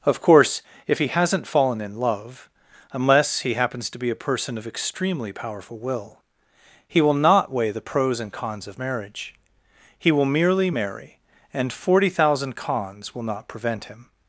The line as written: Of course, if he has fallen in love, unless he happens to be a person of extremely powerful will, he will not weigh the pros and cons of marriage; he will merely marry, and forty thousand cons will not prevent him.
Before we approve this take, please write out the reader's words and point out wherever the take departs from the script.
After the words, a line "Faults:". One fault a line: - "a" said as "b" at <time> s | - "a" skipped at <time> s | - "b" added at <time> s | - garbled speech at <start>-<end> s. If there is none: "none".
Of course, if he hasn't fallen in love, unless he happens to be a person of extremely powerful will, he will not weigh the pros and cons of marriage; he will merely marry, and forty thousand cons will not prevent him.
Faults:
- "has" said as "hasn't" at 1.1 s